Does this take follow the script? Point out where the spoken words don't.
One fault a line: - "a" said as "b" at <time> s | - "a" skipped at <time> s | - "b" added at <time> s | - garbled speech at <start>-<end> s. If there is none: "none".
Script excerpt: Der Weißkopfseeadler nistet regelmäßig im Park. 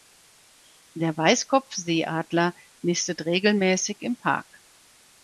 none